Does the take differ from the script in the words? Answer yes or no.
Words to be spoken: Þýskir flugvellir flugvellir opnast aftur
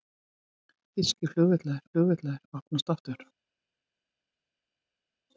no